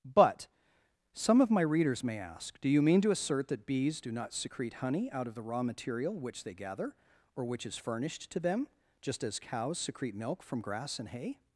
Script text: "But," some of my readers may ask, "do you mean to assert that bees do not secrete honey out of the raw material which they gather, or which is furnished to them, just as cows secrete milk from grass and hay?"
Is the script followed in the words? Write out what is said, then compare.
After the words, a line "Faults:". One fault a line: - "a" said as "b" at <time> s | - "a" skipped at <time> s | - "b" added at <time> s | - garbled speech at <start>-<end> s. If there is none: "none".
"But," some of my readers may ask, "do you mean to assert that bees do not secrete honey out of the raw material which they gather, or which is furnished to them, just as cows secrete milk from grass and hay?"
Faults:
none